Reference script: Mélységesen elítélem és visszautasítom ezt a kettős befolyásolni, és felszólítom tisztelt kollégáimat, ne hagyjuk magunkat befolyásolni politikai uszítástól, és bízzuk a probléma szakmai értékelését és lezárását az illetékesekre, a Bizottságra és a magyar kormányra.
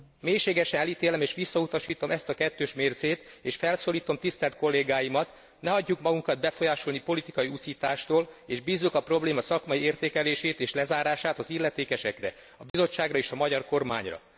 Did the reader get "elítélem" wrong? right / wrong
right